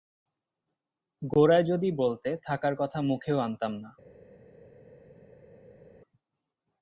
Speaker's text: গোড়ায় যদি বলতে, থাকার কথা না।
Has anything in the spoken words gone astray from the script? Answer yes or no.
yes